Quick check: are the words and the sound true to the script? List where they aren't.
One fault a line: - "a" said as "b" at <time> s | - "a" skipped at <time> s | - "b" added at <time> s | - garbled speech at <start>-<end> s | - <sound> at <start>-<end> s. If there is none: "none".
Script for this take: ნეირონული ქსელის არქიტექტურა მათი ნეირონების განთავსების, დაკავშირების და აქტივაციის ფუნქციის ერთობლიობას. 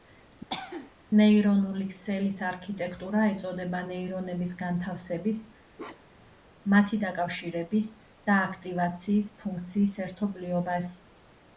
- cough at 0.5-0.9 s
- "მათი" said as "ეწოდება" at 3.3 s
- bark at 5.8-6.4 s
- "მათი" added at 6.8 s